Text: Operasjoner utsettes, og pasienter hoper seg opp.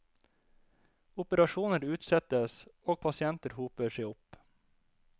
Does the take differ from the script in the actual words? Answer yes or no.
no